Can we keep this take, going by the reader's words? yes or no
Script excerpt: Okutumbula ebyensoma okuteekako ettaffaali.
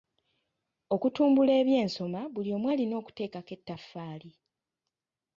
no